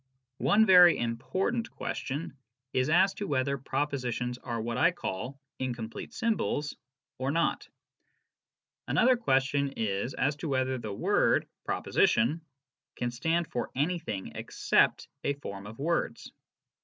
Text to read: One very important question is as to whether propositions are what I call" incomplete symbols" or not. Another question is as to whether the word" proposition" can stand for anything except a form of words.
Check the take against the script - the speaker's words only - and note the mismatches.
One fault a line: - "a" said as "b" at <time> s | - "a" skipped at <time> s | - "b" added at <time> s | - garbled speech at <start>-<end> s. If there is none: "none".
none